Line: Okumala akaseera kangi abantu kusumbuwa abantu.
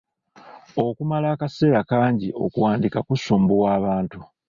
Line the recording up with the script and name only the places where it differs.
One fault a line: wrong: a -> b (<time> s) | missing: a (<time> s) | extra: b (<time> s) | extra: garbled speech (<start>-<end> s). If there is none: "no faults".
wrong: abantu -> okuwandiika (2.4 s)